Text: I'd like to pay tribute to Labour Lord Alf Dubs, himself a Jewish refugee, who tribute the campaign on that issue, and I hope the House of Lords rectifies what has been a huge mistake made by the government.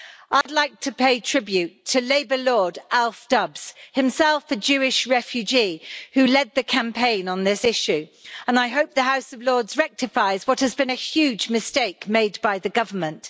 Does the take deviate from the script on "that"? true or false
true